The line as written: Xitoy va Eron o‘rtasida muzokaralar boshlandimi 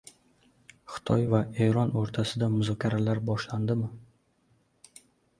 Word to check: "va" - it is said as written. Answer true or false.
true